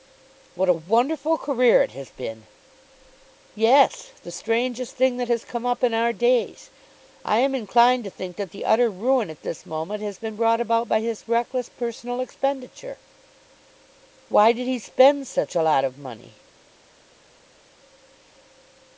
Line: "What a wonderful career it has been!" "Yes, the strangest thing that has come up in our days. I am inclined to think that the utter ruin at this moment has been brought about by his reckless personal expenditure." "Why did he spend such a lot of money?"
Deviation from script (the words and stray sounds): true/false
false